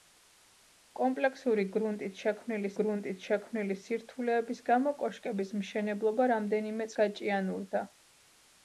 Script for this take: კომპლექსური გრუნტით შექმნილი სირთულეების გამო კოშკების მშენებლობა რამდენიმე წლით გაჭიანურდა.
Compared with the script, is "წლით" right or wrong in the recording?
wrong